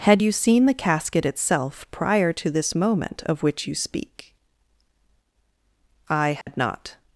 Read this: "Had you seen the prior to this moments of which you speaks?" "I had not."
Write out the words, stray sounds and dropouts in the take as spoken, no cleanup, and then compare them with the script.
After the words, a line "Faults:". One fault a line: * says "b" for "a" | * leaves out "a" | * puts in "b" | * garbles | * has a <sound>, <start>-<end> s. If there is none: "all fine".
"Had you seen the casket itself prior to this moment of which you speak?" "I had not."
Faults:
* puts in "casket itself"
* says "moment" for "moments"
* says "speak" for "speaks"
* has a dropout, 6.4-6.5 s